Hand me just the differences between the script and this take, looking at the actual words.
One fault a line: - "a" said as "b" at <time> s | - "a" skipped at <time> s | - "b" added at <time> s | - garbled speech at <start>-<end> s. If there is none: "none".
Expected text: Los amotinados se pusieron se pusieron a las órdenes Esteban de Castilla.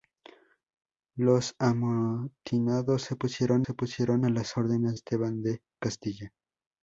none